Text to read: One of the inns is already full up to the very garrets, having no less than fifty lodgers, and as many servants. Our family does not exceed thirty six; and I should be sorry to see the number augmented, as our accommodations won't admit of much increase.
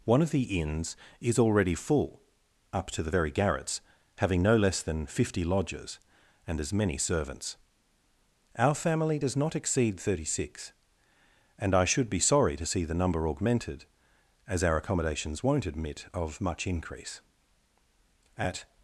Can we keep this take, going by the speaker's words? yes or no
no